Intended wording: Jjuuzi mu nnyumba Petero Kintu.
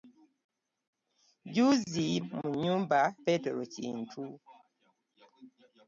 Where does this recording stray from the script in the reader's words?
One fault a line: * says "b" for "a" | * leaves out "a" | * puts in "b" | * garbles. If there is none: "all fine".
all fine